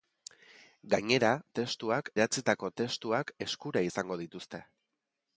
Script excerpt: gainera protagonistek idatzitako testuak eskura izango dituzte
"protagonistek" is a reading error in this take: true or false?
true